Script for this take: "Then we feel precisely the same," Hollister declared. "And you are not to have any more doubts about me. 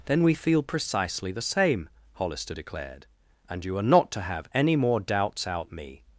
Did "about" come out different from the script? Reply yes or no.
yes